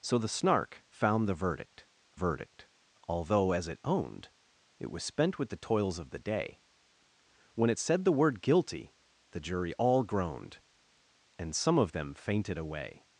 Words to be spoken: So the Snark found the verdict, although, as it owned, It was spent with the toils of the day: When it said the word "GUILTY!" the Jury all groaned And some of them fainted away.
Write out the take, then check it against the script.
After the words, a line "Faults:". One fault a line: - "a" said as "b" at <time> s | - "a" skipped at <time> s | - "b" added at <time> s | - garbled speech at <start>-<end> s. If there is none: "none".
So the Snark found the verdict verdict, although, as it owned, It was spent with the toils of the day: When it said the word "GUILTY!" the Jury all groaned And some of them fainted away.
Faults:
- "verdict" added at 2.1 s